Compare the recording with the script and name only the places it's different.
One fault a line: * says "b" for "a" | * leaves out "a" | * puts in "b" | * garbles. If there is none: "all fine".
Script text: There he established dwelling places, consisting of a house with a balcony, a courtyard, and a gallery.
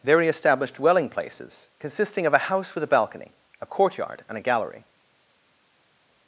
all fine